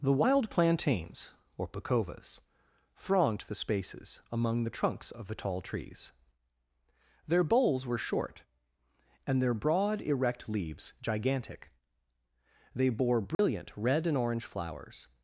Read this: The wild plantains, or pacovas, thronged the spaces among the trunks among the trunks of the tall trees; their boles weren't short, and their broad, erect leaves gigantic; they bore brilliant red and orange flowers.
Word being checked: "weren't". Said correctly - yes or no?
no